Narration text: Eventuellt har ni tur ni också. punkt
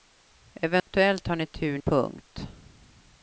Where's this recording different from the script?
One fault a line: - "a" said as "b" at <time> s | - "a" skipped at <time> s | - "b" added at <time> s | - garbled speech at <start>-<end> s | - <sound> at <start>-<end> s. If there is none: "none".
- dropout at 0.8-0.9 s
- "ni också" skipped at 1.8 s